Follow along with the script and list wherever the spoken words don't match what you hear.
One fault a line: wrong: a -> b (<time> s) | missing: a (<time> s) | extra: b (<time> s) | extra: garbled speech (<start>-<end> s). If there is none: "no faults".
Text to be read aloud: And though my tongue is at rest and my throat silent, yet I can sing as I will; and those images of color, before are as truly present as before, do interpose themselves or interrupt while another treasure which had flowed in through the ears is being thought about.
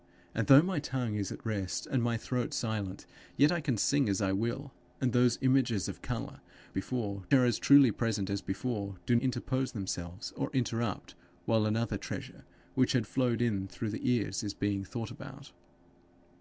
no faults